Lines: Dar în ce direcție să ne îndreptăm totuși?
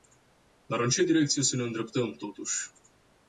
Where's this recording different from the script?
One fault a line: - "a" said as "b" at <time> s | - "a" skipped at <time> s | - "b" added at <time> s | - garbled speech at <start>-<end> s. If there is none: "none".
none